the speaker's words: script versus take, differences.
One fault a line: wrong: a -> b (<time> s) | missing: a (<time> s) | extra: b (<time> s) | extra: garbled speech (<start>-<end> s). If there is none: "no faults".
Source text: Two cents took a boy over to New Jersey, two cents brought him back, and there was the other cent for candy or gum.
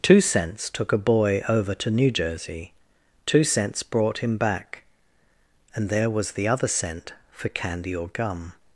no faults